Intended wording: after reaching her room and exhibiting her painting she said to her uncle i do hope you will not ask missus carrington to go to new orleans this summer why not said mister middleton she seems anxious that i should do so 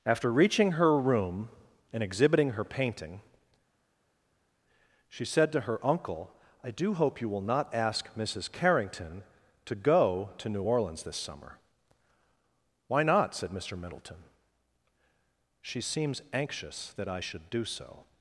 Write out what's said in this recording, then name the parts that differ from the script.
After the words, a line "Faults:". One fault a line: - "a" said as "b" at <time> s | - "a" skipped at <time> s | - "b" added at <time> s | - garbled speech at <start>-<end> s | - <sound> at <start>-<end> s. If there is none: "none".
after reaching her room and exhibiting her painting she said to her uncle i do hope you will not ask missus carrington to go to new orleans this summer why not said mister middleton she seems anxious that i should do so
Faults:
none